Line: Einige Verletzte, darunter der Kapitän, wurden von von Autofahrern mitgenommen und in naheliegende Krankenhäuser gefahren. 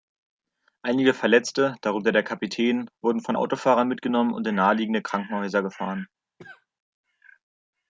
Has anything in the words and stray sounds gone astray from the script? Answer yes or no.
yes